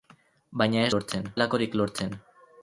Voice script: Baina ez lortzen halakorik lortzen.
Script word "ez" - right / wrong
right